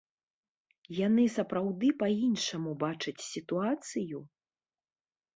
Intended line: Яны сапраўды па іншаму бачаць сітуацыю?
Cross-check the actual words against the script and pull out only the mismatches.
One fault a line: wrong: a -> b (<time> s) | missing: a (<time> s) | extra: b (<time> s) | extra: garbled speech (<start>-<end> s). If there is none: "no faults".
no faults